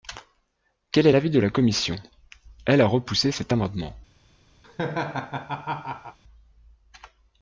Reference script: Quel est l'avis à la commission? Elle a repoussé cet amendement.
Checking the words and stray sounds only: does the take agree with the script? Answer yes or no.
no